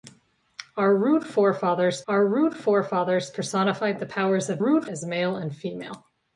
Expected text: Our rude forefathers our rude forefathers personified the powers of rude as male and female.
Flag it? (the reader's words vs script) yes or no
no